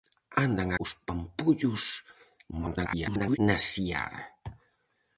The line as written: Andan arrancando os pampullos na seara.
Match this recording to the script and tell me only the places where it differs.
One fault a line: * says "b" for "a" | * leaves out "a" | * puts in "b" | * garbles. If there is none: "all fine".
* leaves out "arrancando"
* garbles